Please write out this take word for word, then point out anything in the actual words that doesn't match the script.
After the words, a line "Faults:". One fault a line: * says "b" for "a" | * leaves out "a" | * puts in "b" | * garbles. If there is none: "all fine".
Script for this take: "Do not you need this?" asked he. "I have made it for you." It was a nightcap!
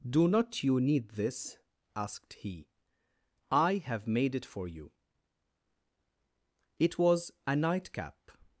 "Do not you need this?" asked he. "I have made it for you." It was a nightcap!
Faults:
all fine